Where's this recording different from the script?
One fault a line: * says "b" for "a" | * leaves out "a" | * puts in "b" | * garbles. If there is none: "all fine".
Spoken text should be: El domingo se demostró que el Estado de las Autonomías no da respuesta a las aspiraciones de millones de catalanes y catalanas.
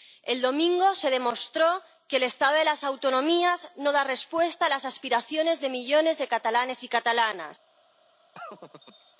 all fine